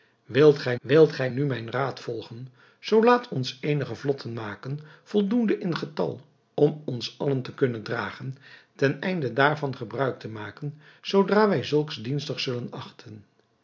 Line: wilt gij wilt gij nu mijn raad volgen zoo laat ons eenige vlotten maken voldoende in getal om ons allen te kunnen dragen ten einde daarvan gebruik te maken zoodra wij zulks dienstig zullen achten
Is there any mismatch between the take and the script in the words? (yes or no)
no